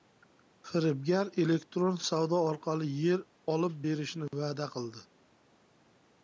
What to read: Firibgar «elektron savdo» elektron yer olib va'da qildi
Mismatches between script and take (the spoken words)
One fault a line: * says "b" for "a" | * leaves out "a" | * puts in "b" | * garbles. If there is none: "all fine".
* says "orqali" for "elektron"
* puts in "berishni"